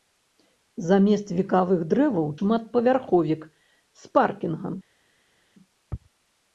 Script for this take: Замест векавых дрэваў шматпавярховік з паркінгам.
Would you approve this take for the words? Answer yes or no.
yes